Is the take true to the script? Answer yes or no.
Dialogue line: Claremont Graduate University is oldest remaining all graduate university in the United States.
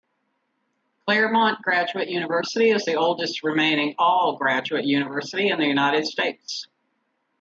no